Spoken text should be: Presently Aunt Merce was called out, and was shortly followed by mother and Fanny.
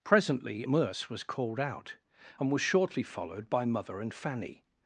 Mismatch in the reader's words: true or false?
true